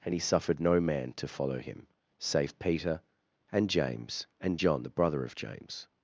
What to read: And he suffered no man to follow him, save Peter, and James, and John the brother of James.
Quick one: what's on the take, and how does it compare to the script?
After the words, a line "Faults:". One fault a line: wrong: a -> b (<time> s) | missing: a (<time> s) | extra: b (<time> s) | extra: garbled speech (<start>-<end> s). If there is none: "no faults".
And he suffered no man to follow him, save Peter, and James, and John the brother of James.
Faults:
no faults